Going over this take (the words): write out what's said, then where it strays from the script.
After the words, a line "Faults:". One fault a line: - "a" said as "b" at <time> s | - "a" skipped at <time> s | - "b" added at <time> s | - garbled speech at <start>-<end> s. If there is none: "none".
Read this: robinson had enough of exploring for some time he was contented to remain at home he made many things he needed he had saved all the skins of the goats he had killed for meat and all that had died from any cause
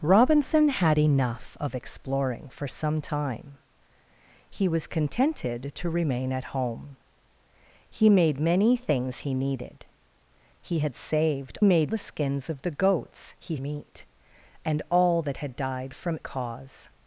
robinson had enough of exploring for some time he was contented to remain at home he made many things he needed he had saved made the skins of the goats he meat and all that had died from cause
Faults:
- "all" said as "made" at 11.6 s
- "had killed for" skipped at 13.6 s
- "any" skipped at 16.2 s